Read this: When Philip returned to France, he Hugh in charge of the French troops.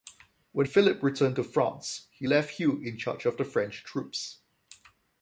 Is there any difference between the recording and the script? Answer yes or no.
yes